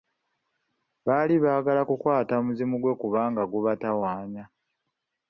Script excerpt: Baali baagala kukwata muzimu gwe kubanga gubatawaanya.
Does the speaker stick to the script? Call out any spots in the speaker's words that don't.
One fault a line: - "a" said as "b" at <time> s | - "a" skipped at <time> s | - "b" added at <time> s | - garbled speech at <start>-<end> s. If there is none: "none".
none